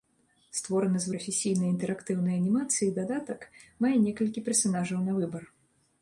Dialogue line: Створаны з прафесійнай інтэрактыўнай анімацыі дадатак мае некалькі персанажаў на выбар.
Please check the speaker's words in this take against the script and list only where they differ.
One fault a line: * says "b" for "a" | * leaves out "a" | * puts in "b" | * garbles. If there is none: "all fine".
all fine